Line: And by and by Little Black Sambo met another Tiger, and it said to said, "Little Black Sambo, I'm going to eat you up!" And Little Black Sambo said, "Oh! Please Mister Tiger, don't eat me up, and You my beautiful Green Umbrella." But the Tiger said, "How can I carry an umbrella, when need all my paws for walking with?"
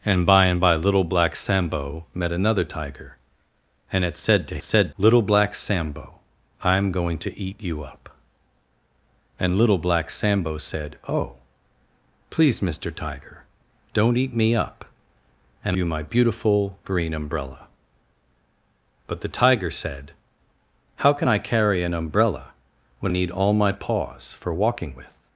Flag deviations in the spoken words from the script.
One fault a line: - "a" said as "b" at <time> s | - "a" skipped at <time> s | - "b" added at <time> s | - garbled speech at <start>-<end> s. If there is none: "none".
none